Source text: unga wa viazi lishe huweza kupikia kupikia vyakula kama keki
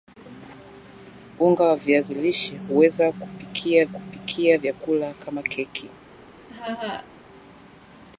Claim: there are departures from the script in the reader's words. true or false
false